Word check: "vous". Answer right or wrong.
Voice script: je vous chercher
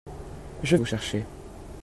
right